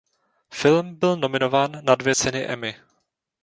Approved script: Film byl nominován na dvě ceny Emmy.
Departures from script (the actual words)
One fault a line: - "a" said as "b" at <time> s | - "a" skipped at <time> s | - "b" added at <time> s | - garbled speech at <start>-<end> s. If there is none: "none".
none